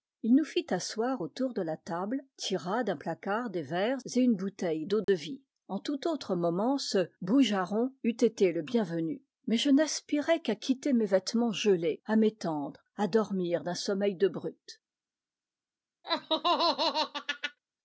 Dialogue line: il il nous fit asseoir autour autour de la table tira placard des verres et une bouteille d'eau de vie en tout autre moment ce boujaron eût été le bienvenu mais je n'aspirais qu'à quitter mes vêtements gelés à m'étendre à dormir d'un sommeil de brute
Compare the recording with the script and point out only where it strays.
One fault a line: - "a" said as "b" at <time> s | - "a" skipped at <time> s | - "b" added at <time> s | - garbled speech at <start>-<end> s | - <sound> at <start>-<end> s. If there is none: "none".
- "il" skipped at 0.3 s
- "autour" skipped at 1.5 s
- "d'un" added at 2.8 s
- dropout at 5.0-5.1 s
- laugh at 16.0-17.6 s